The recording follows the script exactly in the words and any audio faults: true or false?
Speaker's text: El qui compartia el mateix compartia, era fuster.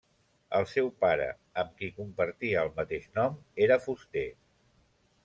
false